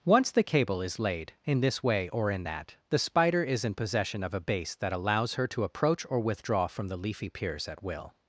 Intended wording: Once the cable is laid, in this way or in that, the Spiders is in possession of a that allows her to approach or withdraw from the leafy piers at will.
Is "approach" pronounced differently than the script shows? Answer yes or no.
no